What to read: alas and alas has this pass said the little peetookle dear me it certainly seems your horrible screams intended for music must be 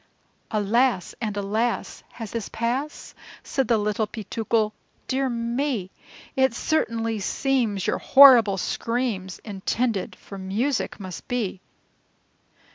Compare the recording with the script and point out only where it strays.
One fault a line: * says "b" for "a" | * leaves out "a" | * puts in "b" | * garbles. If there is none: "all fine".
all fine